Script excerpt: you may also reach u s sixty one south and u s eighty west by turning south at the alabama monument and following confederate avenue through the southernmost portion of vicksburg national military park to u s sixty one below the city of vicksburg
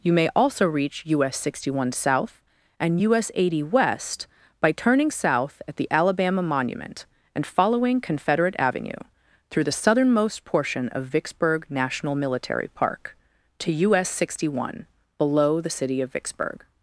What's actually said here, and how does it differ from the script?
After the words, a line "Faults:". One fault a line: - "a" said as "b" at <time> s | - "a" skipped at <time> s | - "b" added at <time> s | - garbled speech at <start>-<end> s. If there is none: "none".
you may also reach u s sixty one south and u s eighty west by turning south at the alabama monument and following confederate avenue through the southernmost portion of vicksburg national military park to u s sixty one below the city of vicksburg
Faults:
none